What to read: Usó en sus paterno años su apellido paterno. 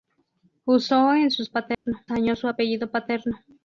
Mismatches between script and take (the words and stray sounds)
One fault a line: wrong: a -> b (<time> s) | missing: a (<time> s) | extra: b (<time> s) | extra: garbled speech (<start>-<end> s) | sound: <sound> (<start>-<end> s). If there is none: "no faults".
sound: dropout (1.7-1.9 s)